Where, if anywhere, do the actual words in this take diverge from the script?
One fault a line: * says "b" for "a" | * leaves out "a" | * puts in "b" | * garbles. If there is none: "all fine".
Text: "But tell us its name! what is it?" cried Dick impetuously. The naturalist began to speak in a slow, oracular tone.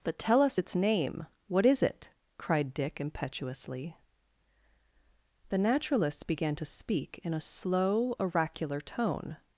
* says "naturalists" for "naturalist"